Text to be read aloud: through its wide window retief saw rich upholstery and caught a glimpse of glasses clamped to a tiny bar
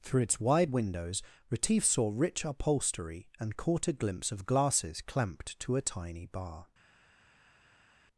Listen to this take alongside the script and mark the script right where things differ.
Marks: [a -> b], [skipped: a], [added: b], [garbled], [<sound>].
through its wide [window -> windows] retief saw rich upholstery and caught a glimpse of glasses clamped to a tiny bar